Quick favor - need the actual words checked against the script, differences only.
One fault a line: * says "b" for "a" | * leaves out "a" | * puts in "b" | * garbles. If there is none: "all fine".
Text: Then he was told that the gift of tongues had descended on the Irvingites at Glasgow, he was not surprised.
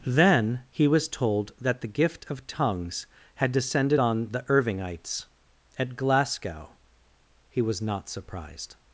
all fine